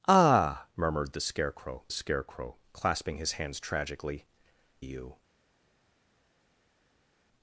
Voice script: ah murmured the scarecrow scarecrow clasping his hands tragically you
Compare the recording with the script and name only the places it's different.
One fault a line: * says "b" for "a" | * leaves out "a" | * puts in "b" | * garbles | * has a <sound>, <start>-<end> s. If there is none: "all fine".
all fine